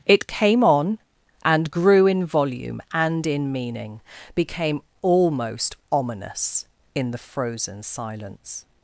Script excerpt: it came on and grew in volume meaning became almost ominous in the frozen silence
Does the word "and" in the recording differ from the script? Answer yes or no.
no